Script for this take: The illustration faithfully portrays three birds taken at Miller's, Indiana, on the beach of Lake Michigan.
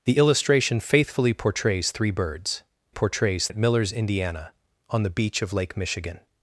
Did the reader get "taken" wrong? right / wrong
wrong